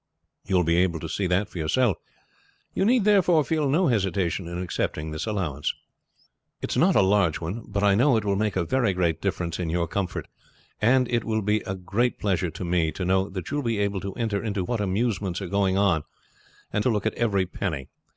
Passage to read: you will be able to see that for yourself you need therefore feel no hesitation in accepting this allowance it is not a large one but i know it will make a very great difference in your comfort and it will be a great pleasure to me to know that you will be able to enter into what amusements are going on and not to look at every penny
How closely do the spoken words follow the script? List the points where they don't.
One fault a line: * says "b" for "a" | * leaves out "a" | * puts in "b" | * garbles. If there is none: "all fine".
* leaves out "not"